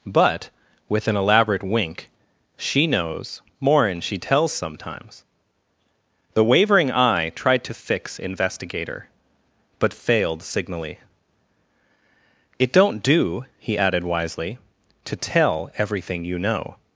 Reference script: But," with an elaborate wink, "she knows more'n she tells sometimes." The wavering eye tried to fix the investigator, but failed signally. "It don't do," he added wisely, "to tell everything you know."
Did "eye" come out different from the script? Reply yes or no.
no